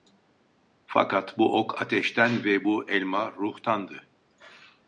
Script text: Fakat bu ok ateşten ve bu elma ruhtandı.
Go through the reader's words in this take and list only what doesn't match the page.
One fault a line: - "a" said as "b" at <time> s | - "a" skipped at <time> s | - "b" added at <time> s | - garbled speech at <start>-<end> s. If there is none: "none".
none